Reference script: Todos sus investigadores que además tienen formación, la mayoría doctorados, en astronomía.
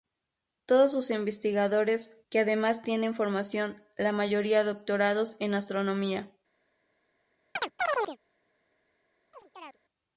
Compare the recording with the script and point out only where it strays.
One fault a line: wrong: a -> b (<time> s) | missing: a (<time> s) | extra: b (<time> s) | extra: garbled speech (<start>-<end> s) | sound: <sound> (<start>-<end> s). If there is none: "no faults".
sound: chirp (7.6-8.2 s)
sound: chirp (9.3-9.8 s)